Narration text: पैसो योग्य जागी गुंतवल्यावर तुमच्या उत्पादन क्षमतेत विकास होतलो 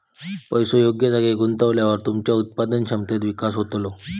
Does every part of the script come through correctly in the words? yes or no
yes